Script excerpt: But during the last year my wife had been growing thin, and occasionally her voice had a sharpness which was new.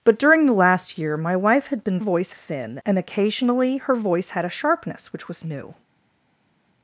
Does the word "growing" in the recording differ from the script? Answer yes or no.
yes